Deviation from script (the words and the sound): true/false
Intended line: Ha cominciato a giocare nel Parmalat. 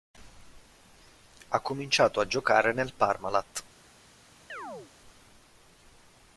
true